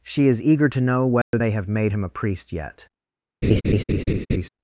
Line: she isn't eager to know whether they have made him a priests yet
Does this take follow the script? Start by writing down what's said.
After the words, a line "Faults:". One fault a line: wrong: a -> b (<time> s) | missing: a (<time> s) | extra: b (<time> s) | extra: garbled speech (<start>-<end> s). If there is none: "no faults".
she is eager to know whether they have made him a priest yet
Faults:
wrong: isn't -> is (0.3 s)
wrong: priests -> priest (2.1 s)